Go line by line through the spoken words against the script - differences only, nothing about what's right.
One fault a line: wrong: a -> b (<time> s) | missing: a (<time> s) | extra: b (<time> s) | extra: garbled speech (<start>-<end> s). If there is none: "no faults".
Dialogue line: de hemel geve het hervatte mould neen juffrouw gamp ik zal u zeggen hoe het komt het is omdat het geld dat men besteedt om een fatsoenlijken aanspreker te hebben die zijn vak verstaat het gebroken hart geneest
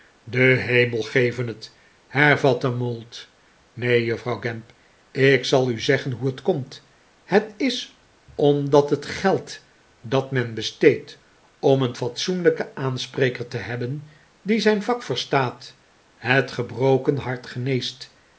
no faults